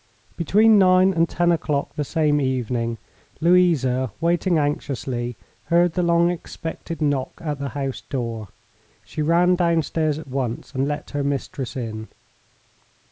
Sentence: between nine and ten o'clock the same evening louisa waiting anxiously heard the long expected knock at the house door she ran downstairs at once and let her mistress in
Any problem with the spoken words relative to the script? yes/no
no